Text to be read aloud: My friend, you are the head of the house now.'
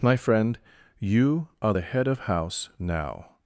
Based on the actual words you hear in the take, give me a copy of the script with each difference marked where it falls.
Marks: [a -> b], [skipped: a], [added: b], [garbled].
My friend, you are the head of [skipped: the] house now.'